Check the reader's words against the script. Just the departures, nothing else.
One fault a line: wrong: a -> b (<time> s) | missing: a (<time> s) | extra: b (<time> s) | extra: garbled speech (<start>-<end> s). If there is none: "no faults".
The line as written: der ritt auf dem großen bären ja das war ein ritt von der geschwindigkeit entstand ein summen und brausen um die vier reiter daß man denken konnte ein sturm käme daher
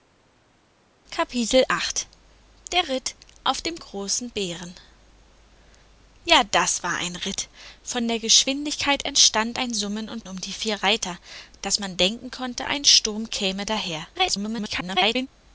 missing: brausen (10.2 s)
extra: garbled speech (14.1-15.3 s)